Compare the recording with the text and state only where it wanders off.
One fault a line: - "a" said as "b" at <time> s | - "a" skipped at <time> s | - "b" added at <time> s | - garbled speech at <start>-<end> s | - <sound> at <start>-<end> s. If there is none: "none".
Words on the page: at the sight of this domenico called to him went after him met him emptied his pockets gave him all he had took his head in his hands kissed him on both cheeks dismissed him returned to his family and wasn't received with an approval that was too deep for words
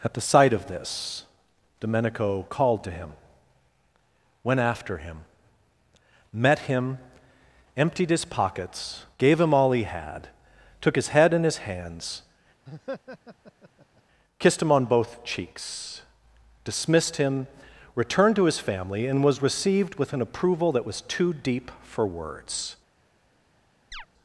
- laugh at 12.7-14.0 s
- "wasn't" said as "was" at 19.2 s
- chirp at 23.9-24.1 s